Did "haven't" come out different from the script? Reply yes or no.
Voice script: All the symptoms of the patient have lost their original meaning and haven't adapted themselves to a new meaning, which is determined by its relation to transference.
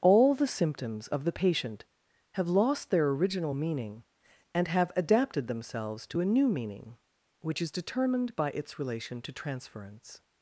yes